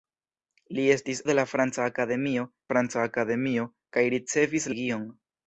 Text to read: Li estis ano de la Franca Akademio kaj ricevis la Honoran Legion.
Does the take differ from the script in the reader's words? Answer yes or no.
yes